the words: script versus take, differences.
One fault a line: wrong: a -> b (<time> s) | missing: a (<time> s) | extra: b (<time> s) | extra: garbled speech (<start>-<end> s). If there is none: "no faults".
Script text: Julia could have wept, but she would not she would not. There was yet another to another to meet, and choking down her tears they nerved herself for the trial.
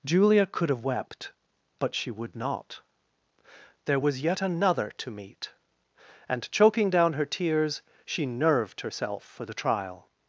missing: she would not (2.8 s)
missing: another to (5.1 s)
wrong: they -> she (8.1 s)